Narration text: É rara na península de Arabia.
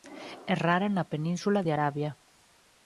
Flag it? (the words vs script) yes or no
no